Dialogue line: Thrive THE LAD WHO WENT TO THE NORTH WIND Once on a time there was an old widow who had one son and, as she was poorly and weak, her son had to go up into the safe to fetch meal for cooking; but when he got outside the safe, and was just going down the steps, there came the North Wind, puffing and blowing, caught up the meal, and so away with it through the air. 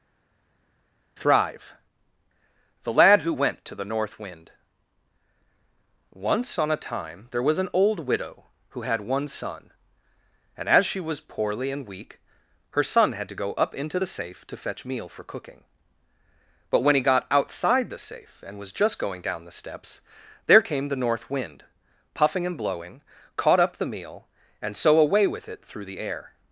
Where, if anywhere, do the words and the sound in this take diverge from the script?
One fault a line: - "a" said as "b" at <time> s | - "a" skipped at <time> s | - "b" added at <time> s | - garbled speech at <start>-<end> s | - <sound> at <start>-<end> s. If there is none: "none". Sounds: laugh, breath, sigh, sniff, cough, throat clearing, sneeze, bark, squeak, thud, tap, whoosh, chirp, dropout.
none